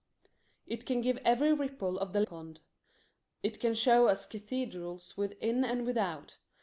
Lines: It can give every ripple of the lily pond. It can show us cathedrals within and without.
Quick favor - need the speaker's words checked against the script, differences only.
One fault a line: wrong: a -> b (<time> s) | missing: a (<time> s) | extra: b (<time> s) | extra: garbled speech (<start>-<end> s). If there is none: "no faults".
missing: lily (2.2 s)